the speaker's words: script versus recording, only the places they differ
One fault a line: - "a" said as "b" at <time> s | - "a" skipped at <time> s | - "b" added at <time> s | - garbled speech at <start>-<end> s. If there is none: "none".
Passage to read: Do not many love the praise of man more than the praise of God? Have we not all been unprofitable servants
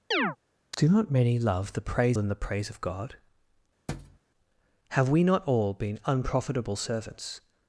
- "of man more" skipped at 2.2 s